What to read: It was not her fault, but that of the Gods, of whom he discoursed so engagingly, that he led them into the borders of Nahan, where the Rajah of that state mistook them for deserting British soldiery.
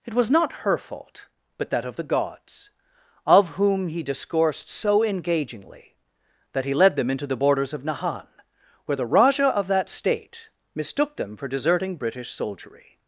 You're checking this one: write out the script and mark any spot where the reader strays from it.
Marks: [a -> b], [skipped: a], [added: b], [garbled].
It was not her fault, but that of the Gods, of whom he discoursed so engagingly, that he led them into the borders of Nahan, where the Rajah of that state mistook them for deserting British soldiery.